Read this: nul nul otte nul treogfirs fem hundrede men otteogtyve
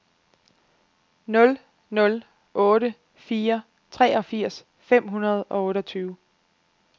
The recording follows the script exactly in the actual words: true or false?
false